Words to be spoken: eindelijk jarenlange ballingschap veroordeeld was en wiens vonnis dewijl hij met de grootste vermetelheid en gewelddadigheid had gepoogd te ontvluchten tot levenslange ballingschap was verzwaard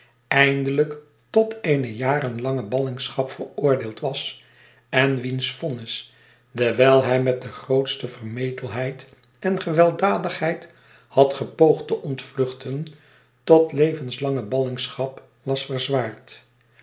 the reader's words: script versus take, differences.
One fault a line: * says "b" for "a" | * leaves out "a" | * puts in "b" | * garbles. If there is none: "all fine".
* puts in "tot eene"